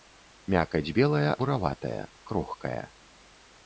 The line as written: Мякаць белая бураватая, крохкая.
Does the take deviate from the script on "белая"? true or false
false